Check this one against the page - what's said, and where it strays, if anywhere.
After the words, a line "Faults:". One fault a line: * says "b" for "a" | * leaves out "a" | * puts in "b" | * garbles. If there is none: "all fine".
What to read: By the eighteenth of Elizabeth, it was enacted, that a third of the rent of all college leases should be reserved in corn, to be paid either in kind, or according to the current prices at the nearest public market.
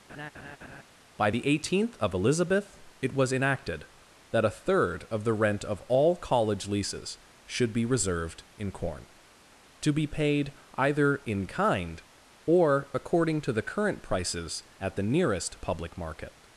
By the eighteenth of Elizabeth, it was enacted, that a third of the rent of all college leases should be reserved in corn, to be paid either in kind, or according to the current prices at the nearest public market.
Faults:
all fine